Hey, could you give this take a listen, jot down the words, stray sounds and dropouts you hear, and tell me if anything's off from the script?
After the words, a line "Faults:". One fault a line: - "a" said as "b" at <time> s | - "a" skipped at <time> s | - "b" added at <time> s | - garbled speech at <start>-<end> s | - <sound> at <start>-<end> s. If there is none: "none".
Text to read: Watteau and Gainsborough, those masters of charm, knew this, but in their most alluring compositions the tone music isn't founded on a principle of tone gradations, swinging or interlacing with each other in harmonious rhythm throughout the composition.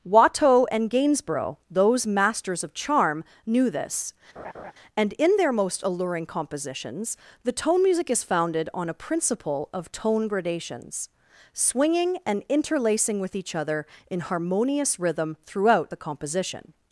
Watteau and Gainsborough, those masters of charm, knew this, and in their most alluring compositions the tone music is founded on a principle of tone gradations, swinging and interlacing with each other in harmonious rhythm throughout the composition.
Faults:
- laugh at 4.4-4.7 s
- "but" said as "and" at 4.9 s
- "isn't" said as "is" at 8.1 s
- "or" said as "and" at 12.3 s